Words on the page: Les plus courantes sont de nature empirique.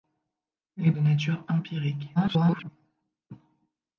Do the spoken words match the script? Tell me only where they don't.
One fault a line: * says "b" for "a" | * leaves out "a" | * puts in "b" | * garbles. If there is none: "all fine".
* leaves out "plus courantes sont"
* garbles